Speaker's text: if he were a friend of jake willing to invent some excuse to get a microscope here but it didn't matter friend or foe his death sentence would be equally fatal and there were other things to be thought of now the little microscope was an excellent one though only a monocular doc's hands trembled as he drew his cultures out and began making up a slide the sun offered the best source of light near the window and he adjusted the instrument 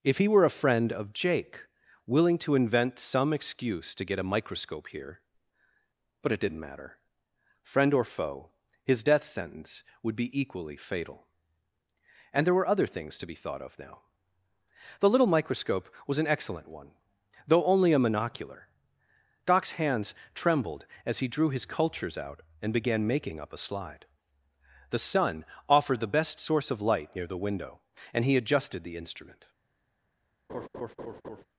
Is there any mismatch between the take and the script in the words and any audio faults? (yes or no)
yes